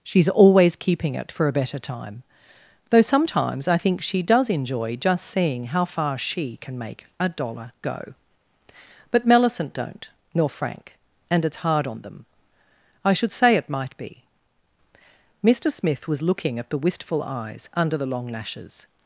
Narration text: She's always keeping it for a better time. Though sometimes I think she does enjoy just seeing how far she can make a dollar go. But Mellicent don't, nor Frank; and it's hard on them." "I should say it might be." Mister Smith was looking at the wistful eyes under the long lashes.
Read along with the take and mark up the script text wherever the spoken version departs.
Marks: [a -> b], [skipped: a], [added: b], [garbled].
She's always keeping it for a better time. Though sometimes I think she does enjoy just seeing how far she can make a dollar go. But Mellicent don't, nor Frank; and it's hard on them." "I should say it might be." Mister Smith was looking at the wistful eyes under the long lashes.